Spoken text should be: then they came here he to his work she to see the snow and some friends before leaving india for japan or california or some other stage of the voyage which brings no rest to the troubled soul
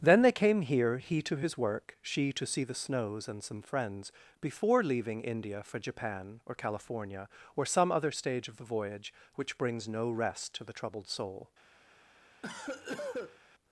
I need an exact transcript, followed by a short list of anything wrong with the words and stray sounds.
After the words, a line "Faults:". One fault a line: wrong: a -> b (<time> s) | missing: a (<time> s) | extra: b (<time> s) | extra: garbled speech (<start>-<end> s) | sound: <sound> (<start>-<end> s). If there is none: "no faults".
then they came here he to his work she to see the snows and some friends before leaving india for japan or california or some other stage of the voyage which brings no rest to the troubled soul
Faults:
wrong: snow -> snows (2.7 s)
sound: cough (12.4-13.4 s)